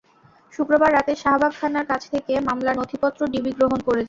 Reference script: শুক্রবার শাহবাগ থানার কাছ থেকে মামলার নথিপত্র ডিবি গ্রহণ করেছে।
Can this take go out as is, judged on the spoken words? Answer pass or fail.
fail